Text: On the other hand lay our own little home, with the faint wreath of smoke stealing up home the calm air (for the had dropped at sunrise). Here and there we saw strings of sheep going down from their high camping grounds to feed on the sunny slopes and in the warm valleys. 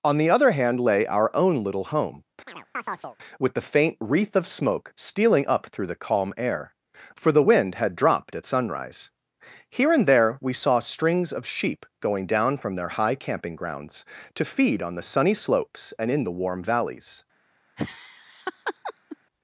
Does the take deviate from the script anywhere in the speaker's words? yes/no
yes